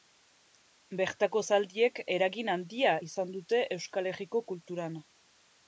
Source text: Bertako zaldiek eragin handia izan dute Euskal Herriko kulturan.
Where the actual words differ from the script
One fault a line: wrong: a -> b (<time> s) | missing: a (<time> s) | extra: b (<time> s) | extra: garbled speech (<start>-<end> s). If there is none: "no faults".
no faults